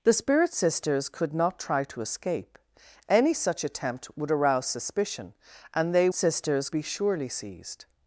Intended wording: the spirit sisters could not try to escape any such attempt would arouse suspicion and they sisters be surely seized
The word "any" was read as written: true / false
true